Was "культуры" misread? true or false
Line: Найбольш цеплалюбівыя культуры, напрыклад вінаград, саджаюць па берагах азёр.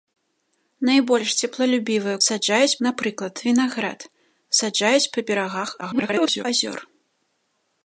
true